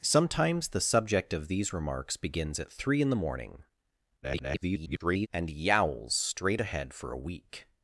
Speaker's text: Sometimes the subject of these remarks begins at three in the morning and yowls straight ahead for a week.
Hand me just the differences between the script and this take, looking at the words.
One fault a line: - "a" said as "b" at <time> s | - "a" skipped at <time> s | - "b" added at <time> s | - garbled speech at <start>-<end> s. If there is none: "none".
- garbled speech at 4.2-5.3 s